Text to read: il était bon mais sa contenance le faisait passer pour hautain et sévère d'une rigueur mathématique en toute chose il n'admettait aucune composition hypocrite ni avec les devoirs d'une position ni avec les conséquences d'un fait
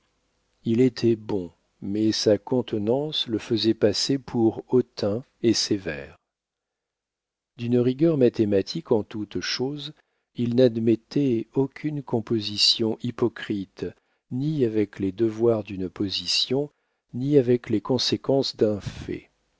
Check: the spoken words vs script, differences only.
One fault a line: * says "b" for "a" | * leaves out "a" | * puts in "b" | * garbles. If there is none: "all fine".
all fine